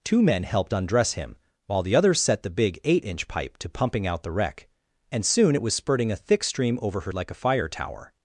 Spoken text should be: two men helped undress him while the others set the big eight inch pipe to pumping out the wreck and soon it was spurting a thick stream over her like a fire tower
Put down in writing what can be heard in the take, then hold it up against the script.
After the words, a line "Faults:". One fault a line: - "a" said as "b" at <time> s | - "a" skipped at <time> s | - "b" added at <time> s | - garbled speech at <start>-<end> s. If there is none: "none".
two men helped undress him while the others set the big eight inch pipe to pumping out the wreck and soon it was spurting a thick stream over her like a fire tower
Faults:
none